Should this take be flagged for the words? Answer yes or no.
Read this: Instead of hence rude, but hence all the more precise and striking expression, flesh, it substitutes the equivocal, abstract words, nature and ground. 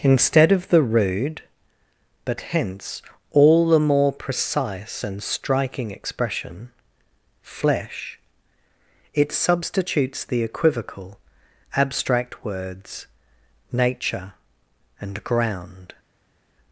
yes